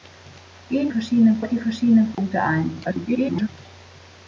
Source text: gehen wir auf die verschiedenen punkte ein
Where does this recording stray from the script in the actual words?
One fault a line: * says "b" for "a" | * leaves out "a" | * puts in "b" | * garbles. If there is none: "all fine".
* says "verschiedenen" for "wir"
* garbles